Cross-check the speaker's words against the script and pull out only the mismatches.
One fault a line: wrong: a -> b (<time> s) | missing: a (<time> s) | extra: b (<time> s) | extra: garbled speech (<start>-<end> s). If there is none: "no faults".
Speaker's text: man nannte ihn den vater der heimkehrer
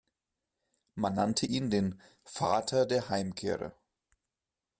no faults